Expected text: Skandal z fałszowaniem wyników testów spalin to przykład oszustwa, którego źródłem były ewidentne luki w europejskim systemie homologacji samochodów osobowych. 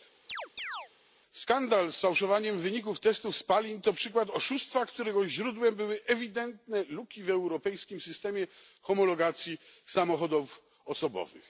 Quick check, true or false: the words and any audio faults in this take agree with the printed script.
false